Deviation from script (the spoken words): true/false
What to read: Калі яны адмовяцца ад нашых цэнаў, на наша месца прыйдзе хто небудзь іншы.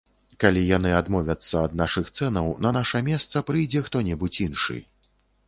false